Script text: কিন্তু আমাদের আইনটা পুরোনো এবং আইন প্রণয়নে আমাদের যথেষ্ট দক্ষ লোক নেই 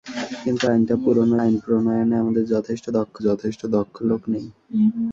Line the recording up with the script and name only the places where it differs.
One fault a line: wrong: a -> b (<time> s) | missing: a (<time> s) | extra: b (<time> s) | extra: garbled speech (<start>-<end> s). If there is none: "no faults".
missing: আমাদের (0.7 s)
missing: এবং (1.3 s)
extra: যথেষ্ট দক্ষ (3.3 s)